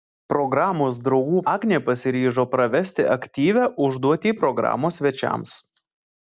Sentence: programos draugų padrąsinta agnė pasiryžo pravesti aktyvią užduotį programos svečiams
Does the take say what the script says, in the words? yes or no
no